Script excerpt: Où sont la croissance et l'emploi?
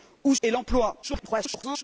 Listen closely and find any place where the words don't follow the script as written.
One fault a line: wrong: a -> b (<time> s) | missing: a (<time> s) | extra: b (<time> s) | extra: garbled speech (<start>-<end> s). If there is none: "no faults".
missing: sont la croissance (0.3 s)
extra: garbled speech (1.0-1.8 s)